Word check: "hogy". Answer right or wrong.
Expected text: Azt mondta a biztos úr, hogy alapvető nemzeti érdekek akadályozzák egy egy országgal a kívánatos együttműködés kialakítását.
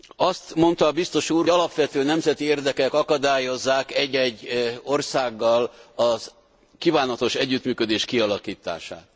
wrong